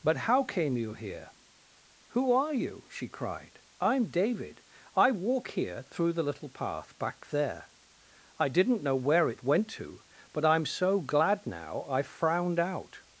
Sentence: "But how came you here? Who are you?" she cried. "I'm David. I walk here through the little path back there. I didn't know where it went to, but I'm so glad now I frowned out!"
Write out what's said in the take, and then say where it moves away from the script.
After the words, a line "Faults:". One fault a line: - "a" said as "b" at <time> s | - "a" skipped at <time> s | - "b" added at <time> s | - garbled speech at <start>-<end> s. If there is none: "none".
"But how came you here? Who are you?" she cried. "I'm David. I walk here through the little path back there. I didn't know where it went to, but I'm so glad now I frowned out!"
Faults:
none